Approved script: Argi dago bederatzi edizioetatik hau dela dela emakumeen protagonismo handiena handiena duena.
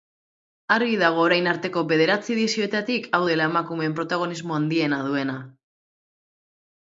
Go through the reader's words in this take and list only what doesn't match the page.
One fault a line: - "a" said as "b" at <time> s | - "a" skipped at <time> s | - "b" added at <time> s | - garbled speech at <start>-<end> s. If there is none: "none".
- "orain arteko" added at 1.2 s
- "dela" skipped at 3.5 s
- "handiena" skipped at 5.0 s